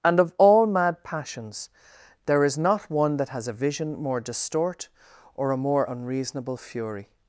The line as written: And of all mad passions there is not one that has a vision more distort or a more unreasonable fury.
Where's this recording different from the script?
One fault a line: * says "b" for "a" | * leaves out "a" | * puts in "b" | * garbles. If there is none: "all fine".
all fine